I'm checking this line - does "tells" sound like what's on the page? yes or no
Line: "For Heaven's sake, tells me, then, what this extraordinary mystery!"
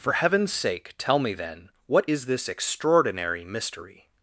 no